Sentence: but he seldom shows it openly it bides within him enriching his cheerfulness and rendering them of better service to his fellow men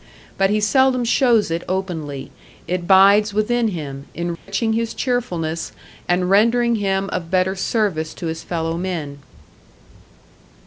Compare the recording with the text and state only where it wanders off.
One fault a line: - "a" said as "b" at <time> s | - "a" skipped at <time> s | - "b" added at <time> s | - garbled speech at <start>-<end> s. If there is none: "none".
- "them" said as "him" at 6.8 s